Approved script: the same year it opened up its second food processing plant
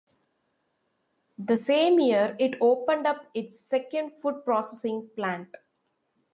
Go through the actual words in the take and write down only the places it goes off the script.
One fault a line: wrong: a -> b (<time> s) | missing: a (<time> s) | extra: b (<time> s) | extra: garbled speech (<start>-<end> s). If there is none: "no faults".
no faults